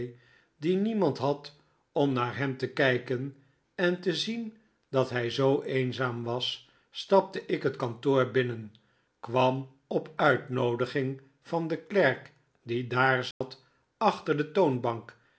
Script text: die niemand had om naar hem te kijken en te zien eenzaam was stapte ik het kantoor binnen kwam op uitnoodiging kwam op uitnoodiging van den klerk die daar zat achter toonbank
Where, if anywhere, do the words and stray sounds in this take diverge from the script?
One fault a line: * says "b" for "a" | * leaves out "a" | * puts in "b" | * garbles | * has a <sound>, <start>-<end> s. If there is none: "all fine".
* puts in "dat hij zoo"
* leaves out "kwam op uitnoodiging"
* has a dropout, 13.3-13.4 s
* puts in "de"